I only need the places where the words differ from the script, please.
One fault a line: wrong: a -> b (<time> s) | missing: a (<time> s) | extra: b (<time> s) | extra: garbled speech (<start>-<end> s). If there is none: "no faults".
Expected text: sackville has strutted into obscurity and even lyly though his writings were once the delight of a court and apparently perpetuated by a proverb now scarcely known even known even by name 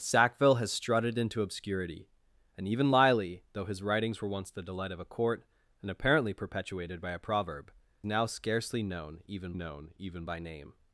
no faults